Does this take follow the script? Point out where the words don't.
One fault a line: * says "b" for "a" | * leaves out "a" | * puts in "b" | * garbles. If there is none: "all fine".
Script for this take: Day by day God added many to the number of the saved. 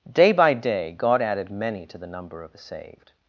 all fine